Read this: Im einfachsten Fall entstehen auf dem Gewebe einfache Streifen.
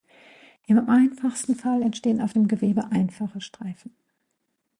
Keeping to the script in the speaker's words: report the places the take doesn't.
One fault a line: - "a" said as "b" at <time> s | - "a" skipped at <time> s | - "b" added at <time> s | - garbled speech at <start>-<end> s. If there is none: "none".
none